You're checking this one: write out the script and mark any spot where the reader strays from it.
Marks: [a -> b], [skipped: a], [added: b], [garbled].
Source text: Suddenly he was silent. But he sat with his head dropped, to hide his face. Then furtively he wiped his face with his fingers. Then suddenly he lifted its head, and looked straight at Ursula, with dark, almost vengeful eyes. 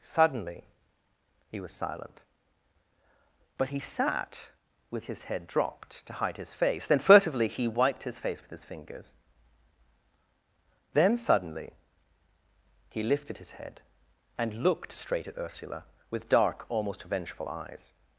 Suddenly he was silent. But he sat with his head dropped, to hide his face. Then furtively he wiped his face with his fingers. Then suddenly he lifted [its -> his] head, and looked straight at Ursula, with dark, almost vengeful eyes.